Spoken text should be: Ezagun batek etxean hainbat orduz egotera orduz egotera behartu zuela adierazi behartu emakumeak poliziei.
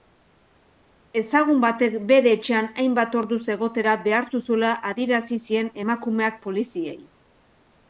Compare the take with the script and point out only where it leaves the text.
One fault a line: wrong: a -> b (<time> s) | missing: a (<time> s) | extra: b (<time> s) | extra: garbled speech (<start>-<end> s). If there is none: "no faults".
extra: bere (2.1 s)
missing: orduz egotera (4.0 s)
wrong: behartu -> zien (5.5 s)